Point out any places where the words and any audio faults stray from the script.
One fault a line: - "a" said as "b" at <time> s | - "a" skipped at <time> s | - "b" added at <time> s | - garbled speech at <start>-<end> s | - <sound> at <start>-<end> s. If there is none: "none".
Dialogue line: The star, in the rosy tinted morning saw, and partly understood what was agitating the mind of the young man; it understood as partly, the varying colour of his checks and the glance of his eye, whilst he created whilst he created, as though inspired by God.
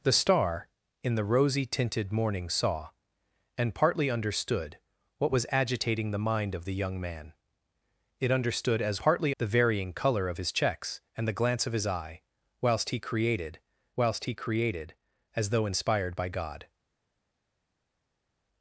none